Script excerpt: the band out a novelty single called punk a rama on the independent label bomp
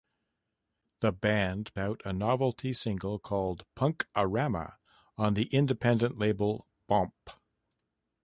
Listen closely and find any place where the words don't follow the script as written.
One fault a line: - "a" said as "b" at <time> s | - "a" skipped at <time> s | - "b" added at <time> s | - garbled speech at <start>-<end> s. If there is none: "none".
none